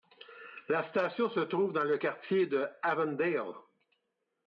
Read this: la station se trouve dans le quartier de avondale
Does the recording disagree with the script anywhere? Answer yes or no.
no